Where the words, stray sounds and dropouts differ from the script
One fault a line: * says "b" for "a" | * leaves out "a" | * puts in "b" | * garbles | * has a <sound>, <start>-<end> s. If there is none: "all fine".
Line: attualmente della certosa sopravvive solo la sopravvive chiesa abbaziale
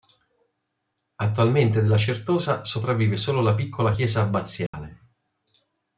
* says "piccola" for "sopravvive"
* has a dropout, 4.7-4.7 s